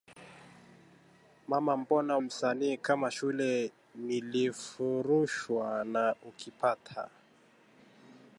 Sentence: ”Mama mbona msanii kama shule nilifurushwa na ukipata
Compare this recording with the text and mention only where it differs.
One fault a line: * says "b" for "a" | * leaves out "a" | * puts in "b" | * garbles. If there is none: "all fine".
all fine